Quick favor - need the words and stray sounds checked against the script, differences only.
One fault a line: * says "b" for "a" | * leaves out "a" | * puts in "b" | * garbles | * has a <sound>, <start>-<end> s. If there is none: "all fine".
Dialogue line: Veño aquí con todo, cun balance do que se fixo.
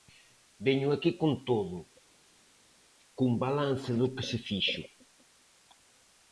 all fine